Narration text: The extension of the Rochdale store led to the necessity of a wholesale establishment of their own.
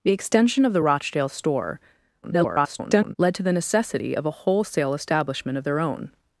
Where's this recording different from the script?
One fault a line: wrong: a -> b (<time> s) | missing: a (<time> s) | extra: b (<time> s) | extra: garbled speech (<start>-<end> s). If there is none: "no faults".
extra: garbled speech (2.2-3.2 s)